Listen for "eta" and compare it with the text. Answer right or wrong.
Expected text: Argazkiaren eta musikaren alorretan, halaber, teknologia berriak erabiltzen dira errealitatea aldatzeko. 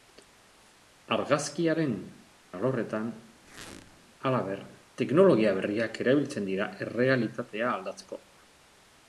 wrong